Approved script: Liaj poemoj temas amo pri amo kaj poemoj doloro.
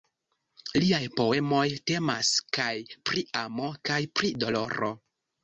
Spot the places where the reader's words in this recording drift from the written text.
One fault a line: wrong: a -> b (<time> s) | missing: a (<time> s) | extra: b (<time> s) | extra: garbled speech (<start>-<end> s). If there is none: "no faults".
wrong: amo -> kaj (2.6 s)
wrong: poemoj -> pri (4.2 s)